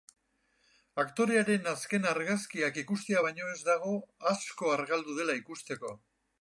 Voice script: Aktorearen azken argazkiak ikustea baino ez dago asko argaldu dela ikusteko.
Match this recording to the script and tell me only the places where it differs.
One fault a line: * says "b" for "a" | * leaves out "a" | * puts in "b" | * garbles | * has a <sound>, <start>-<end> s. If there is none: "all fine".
all fine